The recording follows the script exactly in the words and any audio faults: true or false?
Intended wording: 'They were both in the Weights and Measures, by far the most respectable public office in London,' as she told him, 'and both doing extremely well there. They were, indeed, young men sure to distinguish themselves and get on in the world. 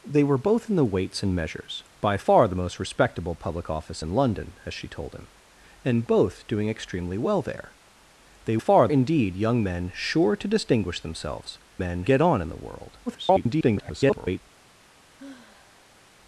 false